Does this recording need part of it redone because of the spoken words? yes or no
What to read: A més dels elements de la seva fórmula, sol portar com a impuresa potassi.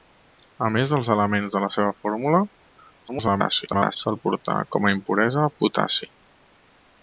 yes